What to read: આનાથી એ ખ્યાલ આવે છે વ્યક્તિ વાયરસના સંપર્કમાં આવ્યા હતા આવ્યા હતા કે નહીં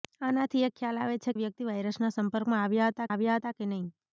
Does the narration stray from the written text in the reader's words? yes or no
no